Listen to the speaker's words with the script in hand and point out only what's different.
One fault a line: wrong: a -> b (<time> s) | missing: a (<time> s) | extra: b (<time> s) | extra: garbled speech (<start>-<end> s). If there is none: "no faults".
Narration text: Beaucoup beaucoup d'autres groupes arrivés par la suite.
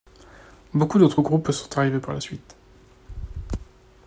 missing: beaucoup (1.0 s)
extra: sont (1.5 s)